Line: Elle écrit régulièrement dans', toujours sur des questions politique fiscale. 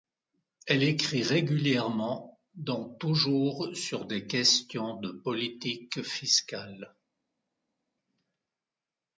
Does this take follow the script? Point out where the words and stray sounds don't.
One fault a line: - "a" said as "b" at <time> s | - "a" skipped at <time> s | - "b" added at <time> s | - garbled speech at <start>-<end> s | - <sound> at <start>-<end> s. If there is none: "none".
- "de" added at 5.0 s